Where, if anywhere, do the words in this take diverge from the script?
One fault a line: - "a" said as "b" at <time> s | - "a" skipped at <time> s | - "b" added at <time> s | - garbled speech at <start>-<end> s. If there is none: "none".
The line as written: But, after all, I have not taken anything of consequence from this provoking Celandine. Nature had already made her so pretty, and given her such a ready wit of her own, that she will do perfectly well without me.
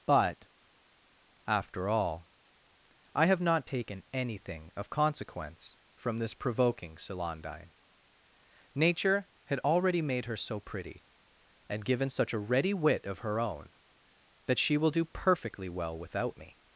- "her" skipped at 12.1 s